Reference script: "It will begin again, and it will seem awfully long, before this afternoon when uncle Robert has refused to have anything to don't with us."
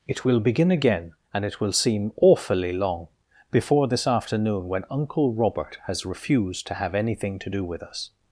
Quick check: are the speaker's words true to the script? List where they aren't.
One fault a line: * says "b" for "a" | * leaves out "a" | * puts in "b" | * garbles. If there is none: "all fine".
* says "do" for "don't"